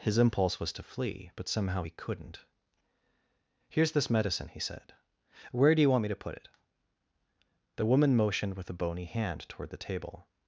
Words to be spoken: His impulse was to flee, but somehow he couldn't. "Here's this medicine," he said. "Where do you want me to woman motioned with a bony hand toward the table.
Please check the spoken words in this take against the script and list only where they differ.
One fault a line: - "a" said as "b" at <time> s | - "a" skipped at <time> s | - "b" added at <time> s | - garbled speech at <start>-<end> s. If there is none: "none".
- "put it The" added at 6.1 s